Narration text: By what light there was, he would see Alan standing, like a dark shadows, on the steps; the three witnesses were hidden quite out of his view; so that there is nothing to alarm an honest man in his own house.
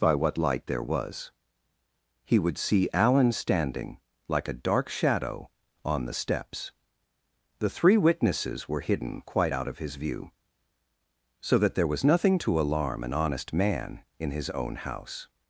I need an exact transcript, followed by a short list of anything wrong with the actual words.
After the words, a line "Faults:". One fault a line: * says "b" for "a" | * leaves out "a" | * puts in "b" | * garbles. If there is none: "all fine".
By what light there was, he would see Alan standing, like a dark shadow, on the steps; the three witnesses were hidden quite out of his view; so that there was nothing to alarm an honest man in his own house.
Faults:
* says "shadow" for "shadows"
* says "was" for "is"